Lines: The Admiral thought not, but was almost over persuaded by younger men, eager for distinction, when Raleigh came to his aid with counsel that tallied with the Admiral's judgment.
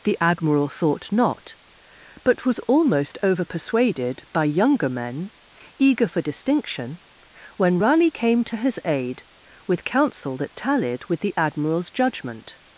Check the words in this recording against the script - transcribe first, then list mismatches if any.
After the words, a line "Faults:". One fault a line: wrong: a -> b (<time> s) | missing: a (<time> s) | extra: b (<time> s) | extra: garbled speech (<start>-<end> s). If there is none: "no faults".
The Admiral thought not, but was almost over persuaded by younger men, eager for distinction, when Raleigh came to his aid with counsel that tallied with the Admiral's judgment.
Faults:
no faults